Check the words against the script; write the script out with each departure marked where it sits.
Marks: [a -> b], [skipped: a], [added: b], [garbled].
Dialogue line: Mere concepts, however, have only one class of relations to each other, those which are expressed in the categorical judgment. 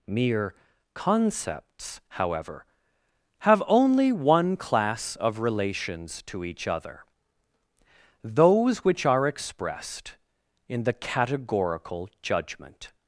Mere concepts, however, have only one class of relations to each other, those which are expressed in the categorical judgment.